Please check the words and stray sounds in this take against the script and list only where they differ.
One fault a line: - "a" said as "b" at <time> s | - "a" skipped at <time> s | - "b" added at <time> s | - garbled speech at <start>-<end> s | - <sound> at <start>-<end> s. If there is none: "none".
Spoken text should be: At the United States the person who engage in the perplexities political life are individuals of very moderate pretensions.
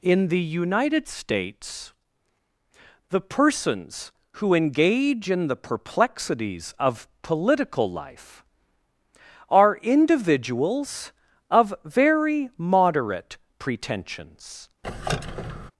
- "At" said as "In" at 0.0 s
- "person" said as "persons" at 3.2 s
- "of" added at 6.8 s
- squeak at 14.8-15.7 s